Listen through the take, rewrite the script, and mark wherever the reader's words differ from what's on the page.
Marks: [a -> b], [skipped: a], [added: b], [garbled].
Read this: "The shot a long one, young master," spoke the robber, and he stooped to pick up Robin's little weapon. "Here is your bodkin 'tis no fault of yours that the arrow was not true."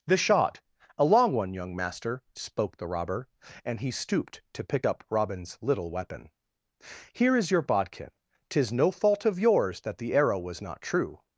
"The shot a long one, young master," spoke the robber, and he stooped to pick up Robin's little weapon. "Here is your bodkin 'tis no fault of yours that the arrow was not true."